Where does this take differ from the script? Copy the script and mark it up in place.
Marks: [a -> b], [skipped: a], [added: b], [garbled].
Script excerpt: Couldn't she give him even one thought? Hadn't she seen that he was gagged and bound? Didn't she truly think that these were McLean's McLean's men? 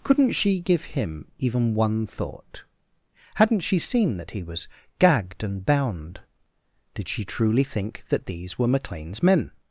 Couldn't she give him even one thought? Hadn't she seen that he was gagged and bound? [Didn't -> Did] she truly think that these were McLean's [skipped: McLean's] men?